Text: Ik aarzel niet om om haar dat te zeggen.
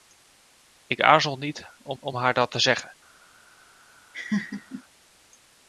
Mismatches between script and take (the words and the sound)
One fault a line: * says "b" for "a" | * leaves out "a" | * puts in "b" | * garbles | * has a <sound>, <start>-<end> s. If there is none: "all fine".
* has a laugh, 4.1-4.8 s